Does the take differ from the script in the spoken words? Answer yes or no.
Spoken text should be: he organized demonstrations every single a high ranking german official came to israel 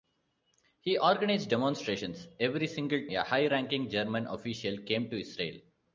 no